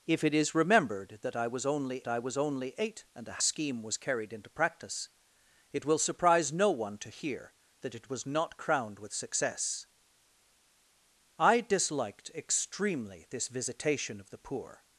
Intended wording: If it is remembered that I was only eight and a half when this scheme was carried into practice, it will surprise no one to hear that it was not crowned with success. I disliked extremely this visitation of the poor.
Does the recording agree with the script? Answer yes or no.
no